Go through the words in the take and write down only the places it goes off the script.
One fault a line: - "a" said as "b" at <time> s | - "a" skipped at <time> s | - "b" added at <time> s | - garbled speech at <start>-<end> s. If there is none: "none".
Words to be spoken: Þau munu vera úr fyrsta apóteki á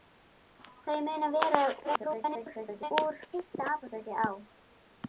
- garbled speech at 1.8-2.9 s